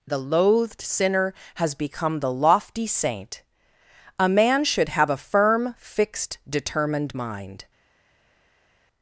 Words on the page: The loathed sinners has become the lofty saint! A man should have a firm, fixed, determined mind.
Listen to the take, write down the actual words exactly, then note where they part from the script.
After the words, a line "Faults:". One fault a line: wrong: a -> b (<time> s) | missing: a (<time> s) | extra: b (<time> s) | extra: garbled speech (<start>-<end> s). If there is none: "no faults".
The loathed sinner has become the lofty saint! A man should have a firm, fixed, determined mind.
Faults:
wrong: sinners -> sinner (0.8 s)